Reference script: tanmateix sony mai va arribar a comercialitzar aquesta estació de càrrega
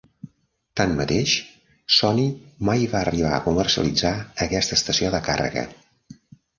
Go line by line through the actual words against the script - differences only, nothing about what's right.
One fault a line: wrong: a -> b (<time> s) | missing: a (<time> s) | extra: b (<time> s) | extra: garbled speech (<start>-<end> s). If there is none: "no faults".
no faults